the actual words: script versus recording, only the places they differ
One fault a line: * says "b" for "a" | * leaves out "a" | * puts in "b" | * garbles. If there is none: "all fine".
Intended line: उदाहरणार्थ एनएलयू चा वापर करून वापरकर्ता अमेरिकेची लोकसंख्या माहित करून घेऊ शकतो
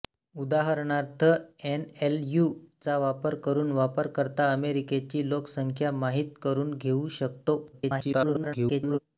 * garbles